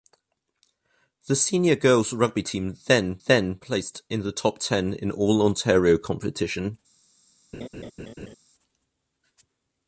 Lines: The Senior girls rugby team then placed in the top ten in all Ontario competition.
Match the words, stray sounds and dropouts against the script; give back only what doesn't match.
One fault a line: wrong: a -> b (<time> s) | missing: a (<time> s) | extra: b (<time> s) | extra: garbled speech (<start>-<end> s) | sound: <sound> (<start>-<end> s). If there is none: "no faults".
extra: then (3.3 s)
sound: laugh (7.5-8.4 s)